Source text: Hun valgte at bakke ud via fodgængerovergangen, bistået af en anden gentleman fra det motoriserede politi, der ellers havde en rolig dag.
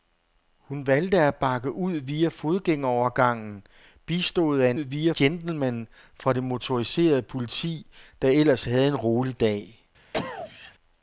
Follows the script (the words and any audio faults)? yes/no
no